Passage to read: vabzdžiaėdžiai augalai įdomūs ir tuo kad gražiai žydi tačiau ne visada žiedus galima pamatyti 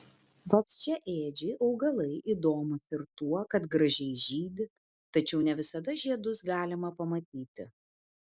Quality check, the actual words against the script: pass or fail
pass